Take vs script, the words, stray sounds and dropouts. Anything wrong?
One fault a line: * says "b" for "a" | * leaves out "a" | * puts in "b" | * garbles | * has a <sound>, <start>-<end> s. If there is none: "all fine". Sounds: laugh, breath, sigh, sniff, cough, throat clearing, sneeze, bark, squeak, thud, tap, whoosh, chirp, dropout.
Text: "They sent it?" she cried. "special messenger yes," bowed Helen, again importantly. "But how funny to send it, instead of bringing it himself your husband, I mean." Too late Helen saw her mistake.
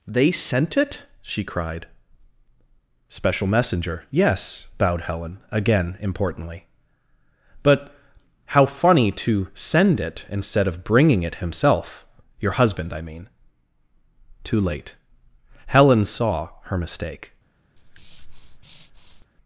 * has a breath, 17.8-19.3 s